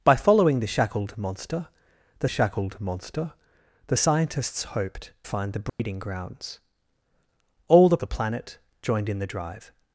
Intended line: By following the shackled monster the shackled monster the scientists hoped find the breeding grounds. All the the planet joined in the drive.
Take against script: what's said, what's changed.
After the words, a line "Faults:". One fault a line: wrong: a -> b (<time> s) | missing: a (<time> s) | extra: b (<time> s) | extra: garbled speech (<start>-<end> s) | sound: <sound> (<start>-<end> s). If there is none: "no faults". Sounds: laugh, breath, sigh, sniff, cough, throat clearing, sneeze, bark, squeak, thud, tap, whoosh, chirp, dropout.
By following the shackled monster the shackled monster the scientists hoped find the breeding grounds. All the the planet joined in the drive.
Faults:
sound: dropout (5.7-5.8 s)